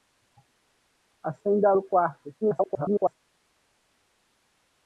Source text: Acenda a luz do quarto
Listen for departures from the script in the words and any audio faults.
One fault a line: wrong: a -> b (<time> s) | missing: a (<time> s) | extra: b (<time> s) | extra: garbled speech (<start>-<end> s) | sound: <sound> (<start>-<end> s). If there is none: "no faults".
missing: luz (1.7 s)
extra: garbled speech (2.4-3.2 s)